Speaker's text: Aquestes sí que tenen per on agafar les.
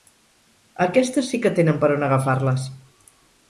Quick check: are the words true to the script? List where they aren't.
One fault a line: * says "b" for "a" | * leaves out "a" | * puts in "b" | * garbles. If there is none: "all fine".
all fine